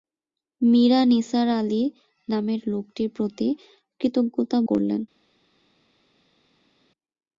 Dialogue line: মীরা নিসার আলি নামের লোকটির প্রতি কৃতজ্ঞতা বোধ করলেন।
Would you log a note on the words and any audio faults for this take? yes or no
yes